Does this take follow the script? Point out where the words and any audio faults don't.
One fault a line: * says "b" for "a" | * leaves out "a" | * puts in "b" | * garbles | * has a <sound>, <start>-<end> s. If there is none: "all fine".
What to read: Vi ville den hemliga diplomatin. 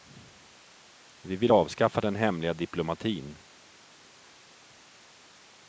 * puts in "avskaffa"